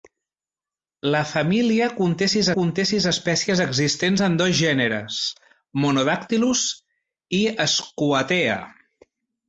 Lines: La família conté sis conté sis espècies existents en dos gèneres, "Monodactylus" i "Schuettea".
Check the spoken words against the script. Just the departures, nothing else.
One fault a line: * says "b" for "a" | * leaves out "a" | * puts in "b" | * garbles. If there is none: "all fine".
all fine